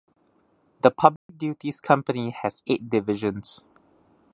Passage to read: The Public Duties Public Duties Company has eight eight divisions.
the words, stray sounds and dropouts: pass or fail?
fail